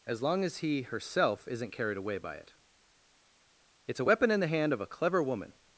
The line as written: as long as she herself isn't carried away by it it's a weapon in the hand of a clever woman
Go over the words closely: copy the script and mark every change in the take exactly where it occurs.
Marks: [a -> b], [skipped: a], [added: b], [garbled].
as long as [she -> he] herself isn't carried away by it it's a weapon in the hand of a clever woman